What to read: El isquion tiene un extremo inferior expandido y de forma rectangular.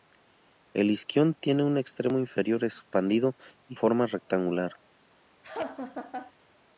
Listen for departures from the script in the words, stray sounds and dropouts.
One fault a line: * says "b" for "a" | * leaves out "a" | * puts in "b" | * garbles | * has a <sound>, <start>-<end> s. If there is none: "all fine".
* leaves out "de"
* has a laugh, 5.4-6.3 s